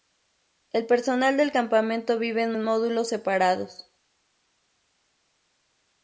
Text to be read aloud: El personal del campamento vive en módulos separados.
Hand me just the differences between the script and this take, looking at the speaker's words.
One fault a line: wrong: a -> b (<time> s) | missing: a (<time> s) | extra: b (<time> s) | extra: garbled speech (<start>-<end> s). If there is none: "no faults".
extra: en (2.5 s)